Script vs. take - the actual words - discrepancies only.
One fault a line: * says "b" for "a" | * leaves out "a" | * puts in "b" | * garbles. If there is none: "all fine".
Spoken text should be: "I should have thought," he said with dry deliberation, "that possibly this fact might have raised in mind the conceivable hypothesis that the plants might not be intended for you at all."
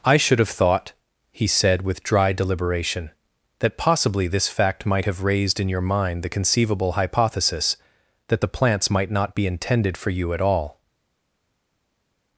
* puts in "your"